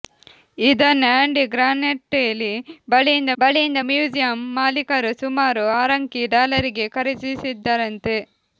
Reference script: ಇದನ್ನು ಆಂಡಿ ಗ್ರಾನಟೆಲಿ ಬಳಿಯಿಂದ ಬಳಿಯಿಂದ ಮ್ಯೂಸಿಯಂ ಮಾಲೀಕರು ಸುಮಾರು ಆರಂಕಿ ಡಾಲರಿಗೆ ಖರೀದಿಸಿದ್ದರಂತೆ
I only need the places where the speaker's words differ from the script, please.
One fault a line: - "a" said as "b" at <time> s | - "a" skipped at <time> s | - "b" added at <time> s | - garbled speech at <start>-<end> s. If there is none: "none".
none